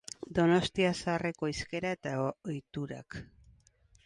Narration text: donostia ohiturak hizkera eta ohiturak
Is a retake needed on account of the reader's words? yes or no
yes